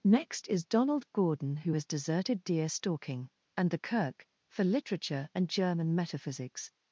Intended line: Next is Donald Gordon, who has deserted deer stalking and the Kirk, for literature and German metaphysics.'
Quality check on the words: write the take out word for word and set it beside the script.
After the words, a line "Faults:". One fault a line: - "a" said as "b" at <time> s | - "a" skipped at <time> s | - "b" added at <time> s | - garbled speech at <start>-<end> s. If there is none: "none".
Next is Donald Gordon, who has deserted deer stalking and the Kirk, for literature and German metaphysics.'
Faults:
none